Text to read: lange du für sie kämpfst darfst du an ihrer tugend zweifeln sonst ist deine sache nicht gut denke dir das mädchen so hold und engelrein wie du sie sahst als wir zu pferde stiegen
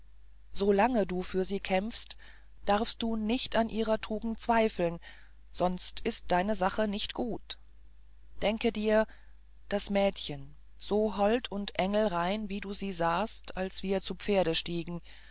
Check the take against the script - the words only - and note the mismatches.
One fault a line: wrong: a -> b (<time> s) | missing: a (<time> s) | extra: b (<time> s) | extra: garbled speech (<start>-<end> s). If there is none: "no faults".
extra: nicht (3.1 s)